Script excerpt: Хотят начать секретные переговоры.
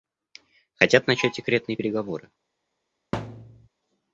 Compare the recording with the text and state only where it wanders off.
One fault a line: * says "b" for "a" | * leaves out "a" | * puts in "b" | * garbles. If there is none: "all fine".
all fine